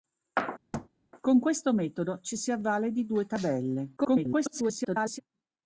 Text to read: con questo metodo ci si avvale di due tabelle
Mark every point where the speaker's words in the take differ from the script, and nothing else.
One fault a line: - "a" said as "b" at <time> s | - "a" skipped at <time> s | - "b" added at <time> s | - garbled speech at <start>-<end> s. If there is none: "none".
- garbled speech at 4.0-5.2 s